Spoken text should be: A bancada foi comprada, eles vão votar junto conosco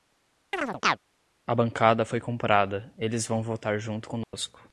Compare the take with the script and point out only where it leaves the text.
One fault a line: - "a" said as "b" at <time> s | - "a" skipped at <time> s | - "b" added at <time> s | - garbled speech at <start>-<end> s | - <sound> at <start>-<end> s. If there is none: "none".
- chirp at 0.5-1.0 s
- dropout at 4.2-4.3 s